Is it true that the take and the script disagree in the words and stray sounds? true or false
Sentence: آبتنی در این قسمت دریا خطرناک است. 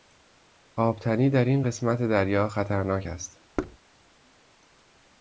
true